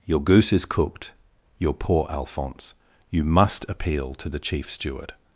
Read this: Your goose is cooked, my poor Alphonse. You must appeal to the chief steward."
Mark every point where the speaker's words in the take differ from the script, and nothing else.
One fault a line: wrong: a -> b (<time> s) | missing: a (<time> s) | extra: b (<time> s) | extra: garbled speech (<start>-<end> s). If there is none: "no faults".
wrong: my -> your (1.6 s)